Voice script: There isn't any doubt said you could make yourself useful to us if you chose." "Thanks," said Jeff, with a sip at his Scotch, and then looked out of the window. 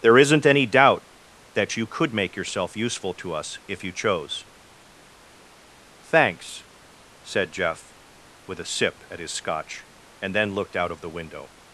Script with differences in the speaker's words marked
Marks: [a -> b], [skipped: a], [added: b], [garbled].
There isn't any doubt [said -> that] you could make yourself useful to us if you chose." "Thanks," said Jeff, with a sip at his Scotch, and then looked out of the window.